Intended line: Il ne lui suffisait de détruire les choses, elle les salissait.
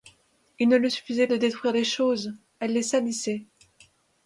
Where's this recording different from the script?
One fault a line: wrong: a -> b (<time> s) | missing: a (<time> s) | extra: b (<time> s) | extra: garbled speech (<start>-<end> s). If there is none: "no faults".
no faults